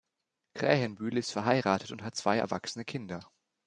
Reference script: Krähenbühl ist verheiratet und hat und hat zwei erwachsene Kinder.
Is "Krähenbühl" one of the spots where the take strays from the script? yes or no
no